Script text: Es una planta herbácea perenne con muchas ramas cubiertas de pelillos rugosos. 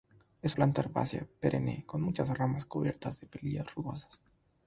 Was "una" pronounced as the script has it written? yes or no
no